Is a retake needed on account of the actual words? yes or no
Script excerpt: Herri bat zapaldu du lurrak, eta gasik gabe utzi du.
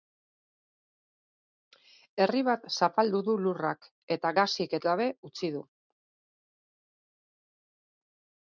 no